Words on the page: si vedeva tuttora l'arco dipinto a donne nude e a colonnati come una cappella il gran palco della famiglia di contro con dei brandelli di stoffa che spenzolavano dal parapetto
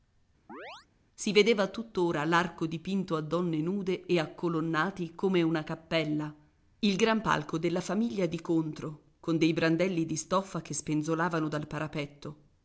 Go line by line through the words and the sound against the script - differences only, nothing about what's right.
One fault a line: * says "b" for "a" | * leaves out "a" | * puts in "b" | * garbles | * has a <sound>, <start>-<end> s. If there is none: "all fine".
* has a chirp, 0.5-0.9 s